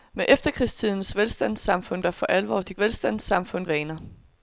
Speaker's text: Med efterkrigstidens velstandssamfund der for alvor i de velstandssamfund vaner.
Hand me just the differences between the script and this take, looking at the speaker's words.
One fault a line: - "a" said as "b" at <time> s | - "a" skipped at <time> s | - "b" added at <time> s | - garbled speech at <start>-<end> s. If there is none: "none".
none